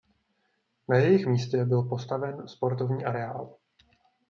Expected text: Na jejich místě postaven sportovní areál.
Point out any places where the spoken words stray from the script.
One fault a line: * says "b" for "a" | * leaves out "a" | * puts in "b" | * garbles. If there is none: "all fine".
* puts in "byl"